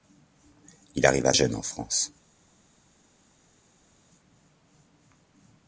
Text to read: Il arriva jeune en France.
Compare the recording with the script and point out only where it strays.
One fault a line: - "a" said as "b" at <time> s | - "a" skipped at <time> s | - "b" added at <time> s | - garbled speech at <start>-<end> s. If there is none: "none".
none